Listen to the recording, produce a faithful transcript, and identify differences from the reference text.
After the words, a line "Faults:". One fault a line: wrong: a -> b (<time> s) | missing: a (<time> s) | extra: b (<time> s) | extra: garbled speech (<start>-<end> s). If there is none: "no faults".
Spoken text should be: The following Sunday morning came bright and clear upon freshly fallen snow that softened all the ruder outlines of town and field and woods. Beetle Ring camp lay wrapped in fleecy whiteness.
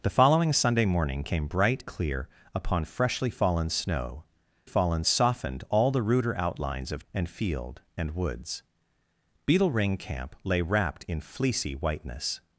The following Sunday morning came bright clear upon freshly fallen snow fallen softened all the ruder outlines of and field and woods. Beetle Ring camp lay wrapped in fleecy whiteness.
Faults:
missing: and (1.8 s)
wrong: that -> fallen (4.6 s)
missing: town (7.0 s)